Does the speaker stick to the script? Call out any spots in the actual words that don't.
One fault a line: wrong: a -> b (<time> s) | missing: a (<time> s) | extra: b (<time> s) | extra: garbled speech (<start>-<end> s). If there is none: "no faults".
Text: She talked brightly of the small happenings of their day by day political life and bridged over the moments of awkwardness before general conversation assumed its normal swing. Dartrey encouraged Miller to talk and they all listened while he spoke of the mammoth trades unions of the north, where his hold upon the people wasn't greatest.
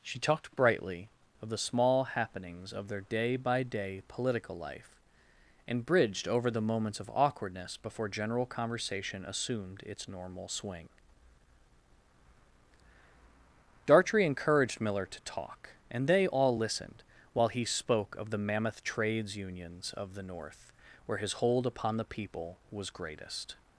wrong: wasn't -> was (22.7 s)